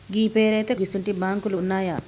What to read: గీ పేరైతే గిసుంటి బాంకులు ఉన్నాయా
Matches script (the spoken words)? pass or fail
pass